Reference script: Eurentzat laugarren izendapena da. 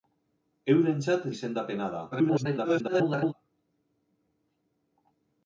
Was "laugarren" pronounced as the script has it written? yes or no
no